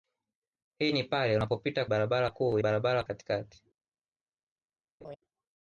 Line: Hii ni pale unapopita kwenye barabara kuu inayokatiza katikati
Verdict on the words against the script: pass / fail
fail